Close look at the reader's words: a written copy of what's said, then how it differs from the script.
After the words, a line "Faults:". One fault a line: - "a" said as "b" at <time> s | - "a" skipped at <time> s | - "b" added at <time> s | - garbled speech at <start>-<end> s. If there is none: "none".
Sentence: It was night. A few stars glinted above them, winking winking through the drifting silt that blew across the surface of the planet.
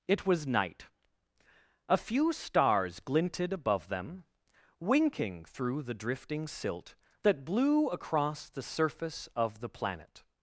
It was night. A few stars glinted above them, winking through the drifting silt that blew across the surface of the planet.
Faults:
- "winking" skipped at 5.5 s